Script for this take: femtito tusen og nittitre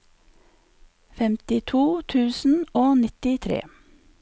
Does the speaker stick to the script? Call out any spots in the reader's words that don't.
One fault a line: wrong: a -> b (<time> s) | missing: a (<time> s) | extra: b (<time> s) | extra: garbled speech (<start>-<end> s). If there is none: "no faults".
no faults